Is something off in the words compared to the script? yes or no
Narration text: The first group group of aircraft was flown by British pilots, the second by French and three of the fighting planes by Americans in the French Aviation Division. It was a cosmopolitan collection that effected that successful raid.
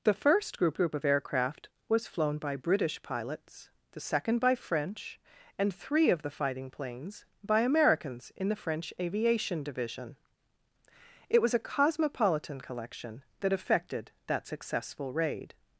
no